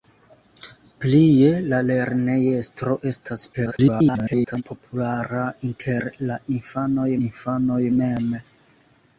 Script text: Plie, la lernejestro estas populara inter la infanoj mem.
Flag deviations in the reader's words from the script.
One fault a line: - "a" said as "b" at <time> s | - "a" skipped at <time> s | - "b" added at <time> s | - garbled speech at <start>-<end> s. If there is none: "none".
- garbled speech at 3.5-4.6 s
- "infanoj" added at 7.3 s